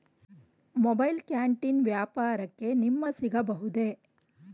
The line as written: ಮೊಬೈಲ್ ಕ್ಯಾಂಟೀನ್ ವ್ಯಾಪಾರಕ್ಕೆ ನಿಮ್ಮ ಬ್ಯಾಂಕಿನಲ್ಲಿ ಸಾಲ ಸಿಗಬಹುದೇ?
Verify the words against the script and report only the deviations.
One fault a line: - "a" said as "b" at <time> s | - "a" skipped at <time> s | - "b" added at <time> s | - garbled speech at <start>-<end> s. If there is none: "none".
- "ಬ್ಯಾಂಕಿನಲ್ಲಿ ಸಾಲ" skipped at 3.0 s